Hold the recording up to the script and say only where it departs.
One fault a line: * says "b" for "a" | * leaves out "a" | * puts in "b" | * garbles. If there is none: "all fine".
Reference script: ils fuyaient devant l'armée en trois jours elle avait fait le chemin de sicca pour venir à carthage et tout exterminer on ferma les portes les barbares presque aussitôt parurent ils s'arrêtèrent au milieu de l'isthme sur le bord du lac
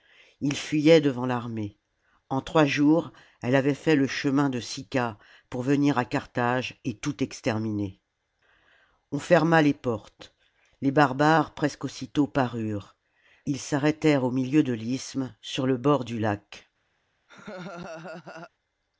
all fine